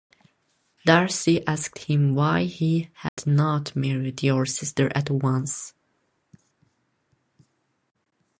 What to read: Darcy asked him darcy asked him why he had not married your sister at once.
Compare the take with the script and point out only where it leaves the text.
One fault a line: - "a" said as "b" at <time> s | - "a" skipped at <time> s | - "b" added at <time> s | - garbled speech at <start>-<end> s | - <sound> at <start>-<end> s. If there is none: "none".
- "darcy asked him" skipped at 2.1 s
- dropout at 3.1-3.2 s